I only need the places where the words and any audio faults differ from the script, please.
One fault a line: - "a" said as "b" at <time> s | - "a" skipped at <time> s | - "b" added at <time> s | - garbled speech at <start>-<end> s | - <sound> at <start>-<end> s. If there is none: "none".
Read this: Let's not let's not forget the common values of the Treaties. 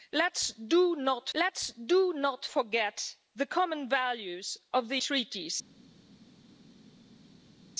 none